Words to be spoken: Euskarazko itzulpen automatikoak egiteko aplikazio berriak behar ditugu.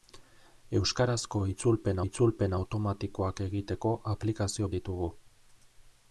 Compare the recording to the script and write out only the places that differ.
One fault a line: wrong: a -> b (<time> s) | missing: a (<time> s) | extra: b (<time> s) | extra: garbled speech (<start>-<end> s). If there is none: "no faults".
extra: itzulpen (2.1 s)
missing: berriak behar (4.7 s)